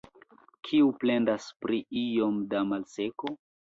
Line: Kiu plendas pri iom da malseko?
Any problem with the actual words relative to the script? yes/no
no